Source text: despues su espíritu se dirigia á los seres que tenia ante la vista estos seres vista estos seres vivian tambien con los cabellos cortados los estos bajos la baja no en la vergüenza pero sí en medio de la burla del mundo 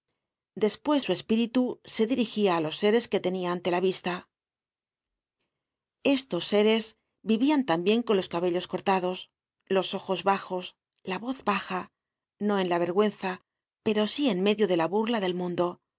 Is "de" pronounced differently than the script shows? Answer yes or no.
no